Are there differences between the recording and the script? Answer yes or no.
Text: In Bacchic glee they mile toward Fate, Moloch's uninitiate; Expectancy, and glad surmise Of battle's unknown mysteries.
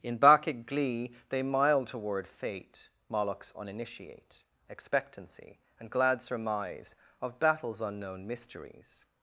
no